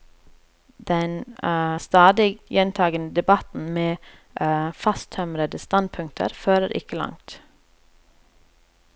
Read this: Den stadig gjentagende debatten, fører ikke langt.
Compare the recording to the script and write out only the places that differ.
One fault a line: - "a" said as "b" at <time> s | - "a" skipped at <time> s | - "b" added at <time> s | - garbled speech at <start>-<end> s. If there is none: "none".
- "med fasttømrede standpunkter" added at 3.7 s